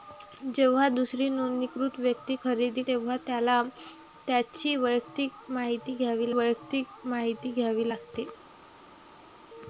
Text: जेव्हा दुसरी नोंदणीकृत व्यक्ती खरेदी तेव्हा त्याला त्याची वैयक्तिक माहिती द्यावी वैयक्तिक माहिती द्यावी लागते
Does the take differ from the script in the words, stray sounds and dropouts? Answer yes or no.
no